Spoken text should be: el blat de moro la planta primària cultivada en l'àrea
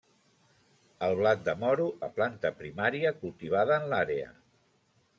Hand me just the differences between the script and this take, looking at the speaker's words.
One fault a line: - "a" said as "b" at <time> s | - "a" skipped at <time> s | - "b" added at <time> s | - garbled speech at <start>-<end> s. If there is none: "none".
none